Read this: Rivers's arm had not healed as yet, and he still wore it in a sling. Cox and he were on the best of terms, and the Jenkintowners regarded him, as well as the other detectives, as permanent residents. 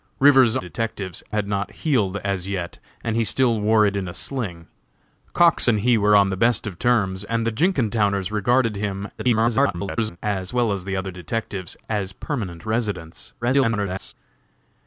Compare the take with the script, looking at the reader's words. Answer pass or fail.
fail